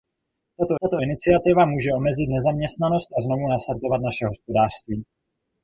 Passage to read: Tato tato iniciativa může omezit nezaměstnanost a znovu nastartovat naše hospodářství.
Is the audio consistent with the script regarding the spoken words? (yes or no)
yes